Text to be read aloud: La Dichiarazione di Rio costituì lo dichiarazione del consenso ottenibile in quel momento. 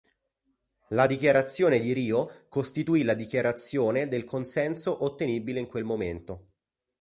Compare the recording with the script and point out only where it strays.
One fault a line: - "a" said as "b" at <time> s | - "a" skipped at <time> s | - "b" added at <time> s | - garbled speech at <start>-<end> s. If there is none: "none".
- "lo" said as "la" at 3.0 s